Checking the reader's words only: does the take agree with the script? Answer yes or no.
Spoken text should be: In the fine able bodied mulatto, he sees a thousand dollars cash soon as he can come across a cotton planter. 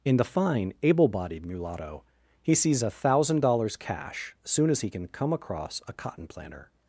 yes